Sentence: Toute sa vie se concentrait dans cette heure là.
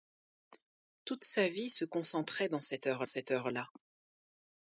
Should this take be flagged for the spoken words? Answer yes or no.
yes